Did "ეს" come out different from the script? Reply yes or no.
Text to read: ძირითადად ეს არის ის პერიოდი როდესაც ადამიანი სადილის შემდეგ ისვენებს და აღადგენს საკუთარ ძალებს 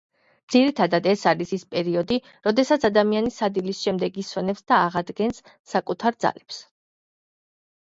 no